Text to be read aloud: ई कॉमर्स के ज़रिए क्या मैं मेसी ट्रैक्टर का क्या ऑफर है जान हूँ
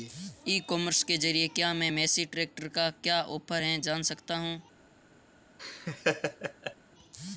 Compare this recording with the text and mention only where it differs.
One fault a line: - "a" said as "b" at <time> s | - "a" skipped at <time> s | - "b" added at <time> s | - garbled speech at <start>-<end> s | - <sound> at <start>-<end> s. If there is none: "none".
- "सकता" added at 4.0 s
- laugh at 5.6-6.8 s